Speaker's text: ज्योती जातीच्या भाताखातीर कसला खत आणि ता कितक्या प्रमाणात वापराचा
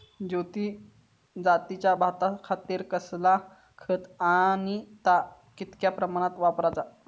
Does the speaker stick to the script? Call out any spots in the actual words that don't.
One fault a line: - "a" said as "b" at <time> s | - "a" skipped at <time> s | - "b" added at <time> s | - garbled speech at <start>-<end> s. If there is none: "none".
none